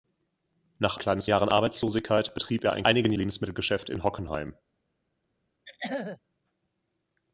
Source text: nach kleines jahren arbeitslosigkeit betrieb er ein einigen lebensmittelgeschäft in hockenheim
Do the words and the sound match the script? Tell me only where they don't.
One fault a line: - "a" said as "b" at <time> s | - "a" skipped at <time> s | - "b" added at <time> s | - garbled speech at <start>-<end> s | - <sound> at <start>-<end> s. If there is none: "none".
- throat clearing at 5.6-6.2 s